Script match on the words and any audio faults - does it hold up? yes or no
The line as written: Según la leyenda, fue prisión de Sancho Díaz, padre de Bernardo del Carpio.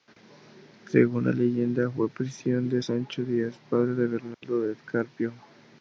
no